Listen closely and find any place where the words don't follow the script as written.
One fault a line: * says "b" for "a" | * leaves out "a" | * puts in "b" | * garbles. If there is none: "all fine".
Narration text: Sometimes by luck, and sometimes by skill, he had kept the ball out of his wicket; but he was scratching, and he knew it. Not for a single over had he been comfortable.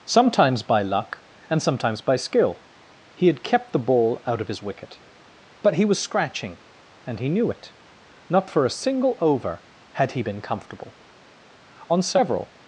* puts in "On several"